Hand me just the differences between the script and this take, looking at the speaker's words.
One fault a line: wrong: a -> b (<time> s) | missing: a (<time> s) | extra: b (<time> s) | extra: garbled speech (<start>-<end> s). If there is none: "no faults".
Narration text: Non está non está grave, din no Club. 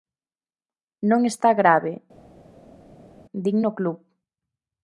missing: non está (1.5 s)